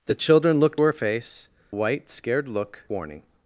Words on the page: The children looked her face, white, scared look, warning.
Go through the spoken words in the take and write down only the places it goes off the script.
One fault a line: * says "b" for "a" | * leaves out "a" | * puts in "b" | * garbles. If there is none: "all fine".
all fine